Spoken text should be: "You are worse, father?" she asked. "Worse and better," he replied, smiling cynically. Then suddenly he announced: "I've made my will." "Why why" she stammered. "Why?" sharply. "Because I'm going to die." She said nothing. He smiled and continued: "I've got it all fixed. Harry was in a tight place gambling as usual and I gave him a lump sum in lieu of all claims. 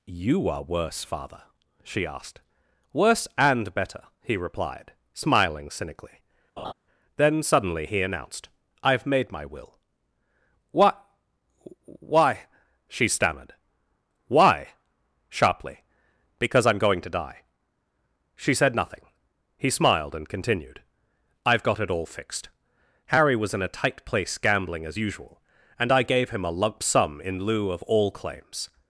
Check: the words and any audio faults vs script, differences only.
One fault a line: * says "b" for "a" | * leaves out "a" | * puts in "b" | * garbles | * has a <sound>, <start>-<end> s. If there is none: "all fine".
* has a laugh, 6.6-6.7 s
* says "What" for "Why"